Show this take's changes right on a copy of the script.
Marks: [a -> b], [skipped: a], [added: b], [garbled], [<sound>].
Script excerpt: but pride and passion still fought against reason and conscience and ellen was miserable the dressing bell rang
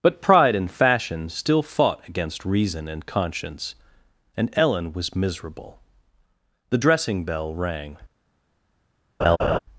but pride and [passion -> fashion] still fought against reason and conscience and ellen was miserable the dressing bell rang [laugh]